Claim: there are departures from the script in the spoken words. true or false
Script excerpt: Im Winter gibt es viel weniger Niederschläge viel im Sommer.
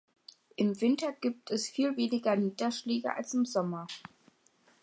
true